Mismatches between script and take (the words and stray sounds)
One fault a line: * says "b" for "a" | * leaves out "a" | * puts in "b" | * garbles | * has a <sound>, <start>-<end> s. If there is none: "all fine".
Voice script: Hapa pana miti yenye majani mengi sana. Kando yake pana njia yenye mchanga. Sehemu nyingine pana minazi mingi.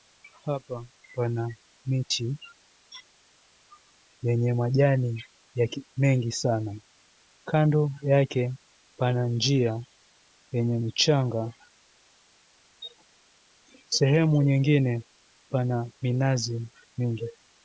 all fine